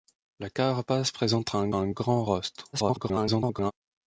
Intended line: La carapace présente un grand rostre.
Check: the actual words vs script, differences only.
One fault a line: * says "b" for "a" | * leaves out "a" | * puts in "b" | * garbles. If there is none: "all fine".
* puts in "un"
* garbles